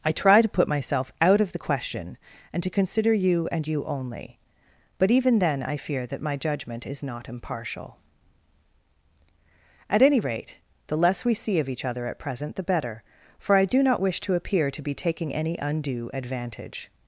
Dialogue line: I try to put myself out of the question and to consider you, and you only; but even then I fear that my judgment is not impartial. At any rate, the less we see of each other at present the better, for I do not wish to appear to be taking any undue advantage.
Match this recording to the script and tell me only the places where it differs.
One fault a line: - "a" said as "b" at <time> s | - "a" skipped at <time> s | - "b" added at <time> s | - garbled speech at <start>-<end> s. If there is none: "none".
none